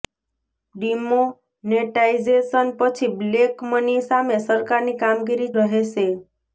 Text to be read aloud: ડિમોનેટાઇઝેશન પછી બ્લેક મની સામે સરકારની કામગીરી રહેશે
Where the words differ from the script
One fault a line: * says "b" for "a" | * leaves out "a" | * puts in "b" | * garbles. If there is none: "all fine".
all fine